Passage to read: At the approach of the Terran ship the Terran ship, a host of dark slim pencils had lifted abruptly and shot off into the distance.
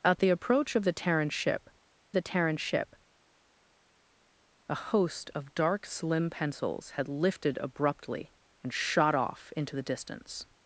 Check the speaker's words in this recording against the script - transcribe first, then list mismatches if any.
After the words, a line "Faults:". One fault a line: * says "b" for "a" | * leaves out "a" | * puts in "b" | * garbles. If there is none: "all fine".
At the approach of the Terran ship the Terran ship, a host of dark slim pencils had lifted abruptly and shot off into the distance.
Faults:
all fine